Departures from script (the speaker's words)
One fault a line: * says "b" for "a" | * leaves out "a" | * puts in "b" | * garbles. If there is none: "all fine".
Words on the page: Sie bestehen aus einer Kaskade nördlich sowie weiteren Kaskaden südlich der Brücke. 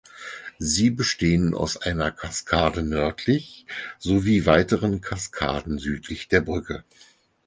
all fine